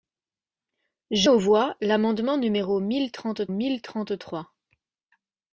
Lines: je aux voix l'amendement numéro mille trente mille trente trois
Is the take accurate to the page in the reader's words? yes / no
yes